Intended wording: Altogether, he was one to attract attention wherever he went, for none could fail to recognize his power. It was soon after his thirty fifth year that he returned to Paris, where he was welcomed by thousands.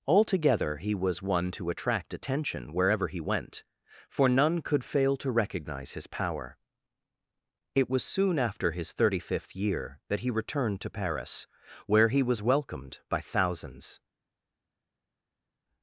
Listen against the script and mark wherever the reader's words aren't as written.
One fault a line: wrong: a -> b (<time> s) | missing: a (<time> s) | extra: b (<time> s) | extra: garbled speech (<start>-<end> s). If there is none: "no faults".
no faults